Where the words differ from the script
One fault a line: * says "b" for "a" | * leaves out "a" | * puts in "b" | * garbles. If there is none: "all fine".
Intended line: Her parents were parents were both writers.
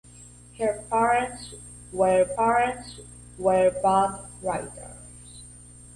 all fine